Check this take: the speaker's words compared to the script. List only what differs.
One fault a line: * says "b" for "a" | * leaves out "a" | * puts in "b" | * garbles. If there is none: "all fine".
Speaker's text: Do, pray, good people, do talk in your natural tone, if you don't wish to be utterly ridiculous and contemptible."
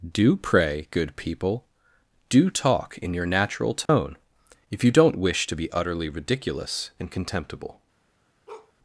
all fine